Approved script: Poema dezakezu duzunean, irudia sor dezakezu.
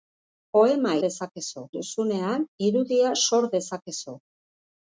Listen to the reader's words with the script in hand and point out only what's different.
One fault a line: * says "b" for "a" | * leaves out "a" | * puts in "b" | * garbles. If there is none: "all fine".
all fine